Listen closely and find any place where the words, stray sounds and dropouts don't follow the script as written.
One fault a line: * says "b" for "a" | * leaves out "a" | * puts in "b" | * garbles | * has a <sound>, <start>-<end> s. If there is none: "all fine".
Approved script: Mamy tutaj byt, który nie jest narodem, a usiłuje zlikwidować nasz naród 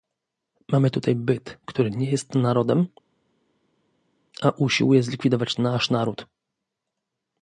all fine